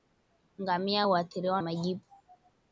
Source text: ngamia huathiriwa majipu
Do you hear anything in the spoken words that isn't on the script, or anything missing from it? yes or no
no